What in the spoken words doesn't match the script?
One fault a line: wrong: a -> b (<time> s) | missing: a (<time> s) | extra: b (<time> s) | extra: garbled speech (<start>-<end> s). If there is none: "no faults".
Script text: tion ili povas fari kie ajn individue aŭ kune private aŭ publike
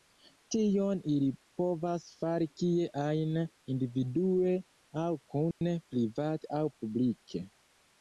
no faults